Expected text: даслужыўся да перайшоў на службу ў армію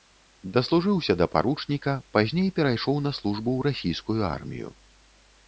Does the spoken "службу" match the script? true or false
true